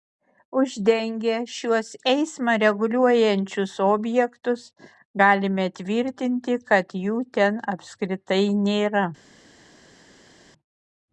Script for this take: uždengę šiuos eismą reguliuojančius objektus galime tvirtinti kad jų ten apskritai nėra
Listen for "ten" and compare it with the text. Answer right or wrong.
right